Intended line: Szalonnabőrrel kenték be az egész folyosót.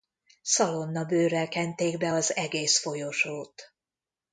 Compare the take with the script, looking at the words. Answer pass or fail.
pass